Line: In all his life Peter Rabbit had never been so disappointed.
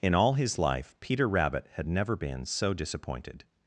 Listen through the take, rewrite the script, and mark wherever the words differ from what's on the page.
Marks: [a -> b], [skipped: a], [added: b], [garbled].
In all his life Peter Rabbit had never been so disappointed.